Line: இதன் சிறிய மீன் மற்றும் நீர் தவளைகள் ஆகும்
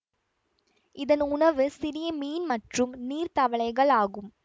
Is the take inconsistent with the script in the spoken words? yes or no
yes